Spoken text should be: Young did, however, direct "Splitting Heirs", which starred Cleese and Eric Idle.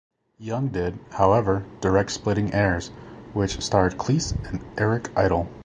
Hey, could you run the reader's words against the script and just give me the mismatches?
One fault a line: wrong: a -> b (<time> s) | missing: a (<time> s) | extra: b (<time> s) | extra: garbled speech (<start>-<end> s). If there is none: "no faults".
no faults